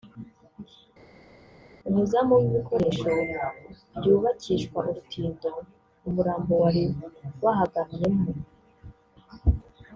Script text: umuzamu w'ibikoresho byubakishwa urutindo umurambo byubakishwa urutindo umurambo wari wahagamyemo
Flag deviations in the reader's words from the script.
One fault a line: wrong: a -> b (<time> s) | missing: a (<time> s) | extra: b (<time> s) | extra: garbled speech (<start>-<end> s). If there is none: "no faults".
missing: byubakishwa urutindo umurambo (6.5 s)